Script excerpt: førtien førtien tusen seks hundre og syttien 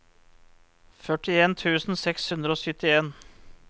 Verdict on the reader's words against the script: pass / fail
fail